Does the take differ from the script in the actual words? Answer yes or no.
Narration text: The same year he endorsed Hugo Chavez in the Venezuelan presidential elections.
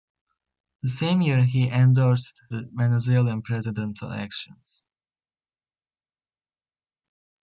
yes